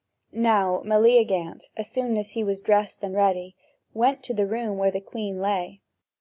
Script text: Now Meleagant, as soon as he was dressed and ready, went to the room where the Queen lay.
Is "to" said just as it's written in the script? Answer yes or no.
yes